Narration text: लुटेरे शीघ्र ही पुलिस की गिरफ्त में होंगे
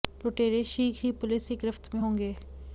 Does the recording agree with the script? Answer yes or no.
yes